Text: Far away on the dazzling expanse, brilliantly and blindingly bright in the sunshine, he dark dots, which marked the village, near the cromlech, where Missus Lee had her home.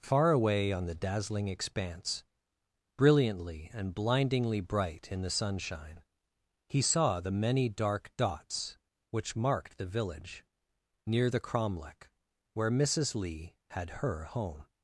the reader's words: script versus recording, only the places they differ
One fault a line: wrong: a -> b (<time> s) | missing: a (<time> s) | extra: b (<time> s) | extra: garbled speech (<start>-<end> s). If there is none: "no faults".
extra: saw the many (6.8 s)